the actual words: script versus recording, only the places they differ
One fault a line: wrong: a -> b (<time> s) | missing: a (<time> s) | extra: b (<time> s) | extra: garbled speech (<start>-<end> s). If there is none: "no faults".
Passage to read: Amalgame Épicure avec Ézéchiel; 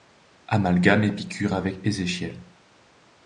no faults